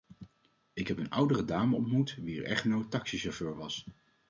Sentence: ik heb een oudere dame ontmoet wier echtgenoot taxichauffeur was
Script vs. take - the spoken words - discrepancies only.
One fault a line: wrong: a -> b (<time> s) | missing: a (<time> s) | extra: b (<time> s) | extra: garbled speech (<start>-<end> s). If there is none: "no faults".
no faults